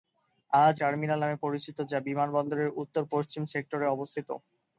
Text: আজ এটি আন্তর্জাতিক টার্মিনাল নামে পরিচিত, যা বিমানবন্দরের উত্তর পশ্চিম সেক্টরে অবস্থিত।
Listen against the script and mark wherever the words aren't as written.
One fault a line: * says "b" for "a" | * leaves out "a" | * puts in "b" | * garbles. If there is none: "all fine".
* leaves out "এটি আন্তর্জাতিক"